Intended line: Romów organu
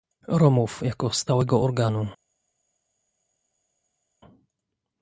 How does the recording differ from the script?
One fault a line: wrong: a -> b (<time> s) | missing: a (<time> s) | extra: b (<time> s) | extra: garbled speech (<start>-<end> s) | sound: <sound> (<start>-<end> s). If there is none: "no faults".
extra: jako stałego (0.8 s)